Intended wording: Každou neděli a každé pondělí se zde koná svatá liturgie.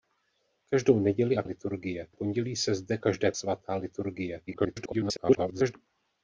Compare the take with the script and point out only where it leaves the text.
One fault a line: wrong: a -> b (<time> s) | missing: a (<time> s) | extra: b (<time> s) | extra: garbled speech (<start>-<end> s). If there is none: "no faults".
wrong: každé -> liturgie (1.4 s)
wrong: koná -> každé (3.0 s)
extra: garbled speech (4.5-5.8 s)